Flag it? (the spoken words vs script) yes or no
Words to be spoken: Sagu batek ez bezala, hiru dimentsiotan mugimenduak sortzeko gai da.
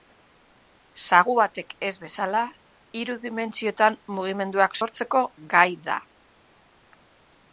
no